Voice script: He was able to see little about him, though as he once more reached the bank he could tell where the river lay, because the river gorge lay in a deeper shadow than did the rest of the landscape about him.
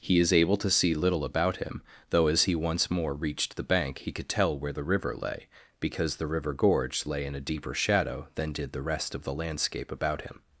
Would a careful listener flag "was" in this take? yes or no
yes